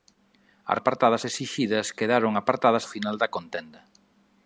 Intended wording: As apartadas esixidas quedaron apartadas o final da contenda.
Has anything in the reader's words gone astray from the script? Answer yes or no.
no